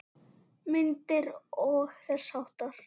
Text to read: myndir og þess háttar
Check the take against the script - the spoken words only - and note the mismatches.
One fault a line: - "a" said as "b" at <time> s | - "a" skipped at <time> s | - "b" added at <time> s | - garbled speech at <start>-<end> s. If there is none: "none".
none